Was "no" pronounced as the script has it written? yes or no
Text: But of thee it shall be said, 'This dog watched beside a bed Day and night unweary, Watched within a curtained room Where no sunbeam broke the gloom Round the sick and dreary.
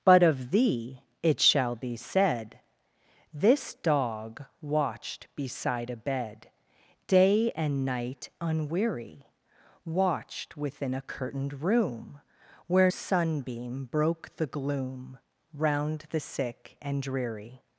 no